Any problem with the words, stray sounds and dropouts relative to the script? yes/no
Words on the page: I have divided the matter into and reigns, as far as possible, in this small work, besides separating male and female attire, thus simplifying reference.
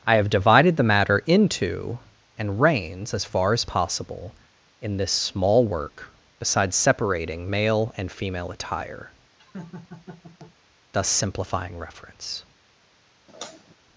yes